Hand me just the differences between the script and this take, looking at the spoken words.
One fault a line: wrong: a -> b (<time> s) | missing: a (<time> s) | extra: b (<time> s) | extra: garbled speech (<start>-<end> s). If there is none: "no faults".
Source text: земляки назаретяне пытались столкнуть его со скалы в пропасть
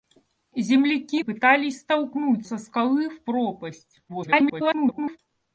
missing: назаретяне (1.2 s)
missing: его (2.5 s)
extra: garbled speech (4.1-5.2 s)